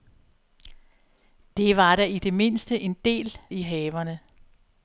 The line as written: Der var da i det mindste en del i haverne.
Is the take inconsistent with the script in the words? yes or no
no